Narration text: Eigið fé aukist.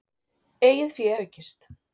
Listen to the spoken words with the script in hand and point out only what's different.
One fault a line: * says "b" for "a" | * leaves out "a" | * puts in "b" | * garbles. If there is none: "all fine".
all fine